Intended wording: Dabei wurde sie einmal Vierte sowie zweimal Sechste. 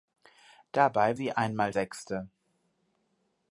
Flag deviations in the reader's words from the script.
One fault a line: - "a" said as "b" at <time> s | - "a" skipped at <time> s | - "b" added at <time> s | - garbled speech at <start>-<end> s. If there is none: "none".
- "wurde" skipped at 1.2 s
- "Vierte sowie zweimal" skipped at 1.7 s